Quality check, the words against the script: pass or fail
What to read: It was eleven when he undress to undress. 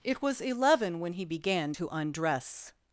fail